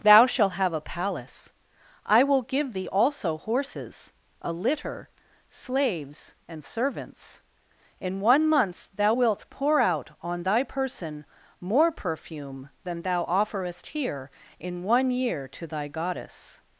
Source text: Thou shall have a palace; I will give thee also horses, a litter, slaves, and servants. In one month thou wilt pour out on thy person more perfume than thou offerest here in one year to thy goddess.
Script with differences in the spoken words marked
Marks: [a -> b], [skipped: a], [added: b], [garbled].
Thou [shall -> shalt] have a palace; I will give thee also horses, a litter, slaves, and servants. In one month thou wilt pour out on thy person more perfume than thou offerest here in one year to thy goddess.